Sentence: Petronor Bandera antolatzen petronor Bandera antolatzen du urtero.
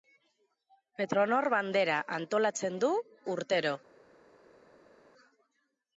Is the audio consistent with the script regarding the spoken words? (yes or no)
no